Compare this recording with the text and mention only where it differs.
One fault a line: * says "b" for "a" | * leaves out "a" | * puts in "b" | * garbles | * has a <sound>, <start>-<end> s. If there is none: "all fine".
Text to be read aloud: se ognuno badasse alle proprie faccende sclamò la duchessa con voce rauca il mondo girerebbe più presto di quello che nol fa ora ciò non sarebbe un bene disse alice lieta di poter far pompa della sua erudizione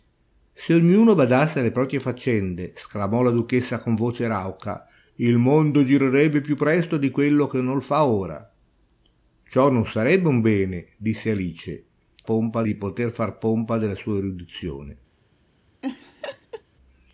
* says "pompa" for "lieta"
* has a laugh, 15.8-16.6 s